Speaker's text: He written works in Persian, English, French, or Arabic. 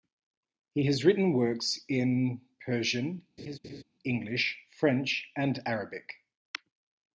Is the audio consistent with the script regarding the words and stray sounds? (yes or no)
no